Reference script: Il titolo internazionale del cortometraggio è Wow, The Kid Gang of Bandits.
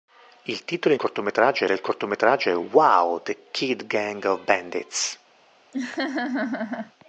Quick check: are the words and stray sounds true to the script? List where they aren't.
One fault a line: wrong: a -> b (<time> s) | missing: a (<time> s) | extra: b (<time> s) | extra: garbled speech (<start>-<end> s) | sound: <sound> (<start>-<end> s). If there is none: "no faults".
wrong: internazionale -> cortometraggio (0.9 s)
sound: laugh (5.7-6.9 s)